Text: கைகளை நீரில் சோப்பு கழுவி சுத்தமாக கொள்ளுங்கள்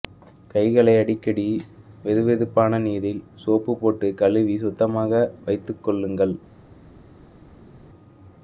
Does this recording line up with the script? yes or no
no